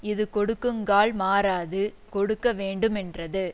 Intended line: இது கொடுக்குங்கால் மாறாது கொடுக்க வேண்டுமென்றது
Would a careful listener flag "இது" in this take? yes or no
no